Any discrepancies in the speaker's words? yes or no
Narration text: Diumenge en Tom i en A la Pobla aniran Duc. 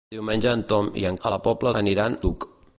no